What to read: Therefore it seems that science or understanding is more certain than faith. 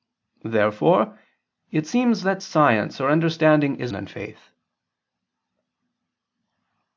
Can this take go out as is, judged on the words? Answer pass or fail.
fail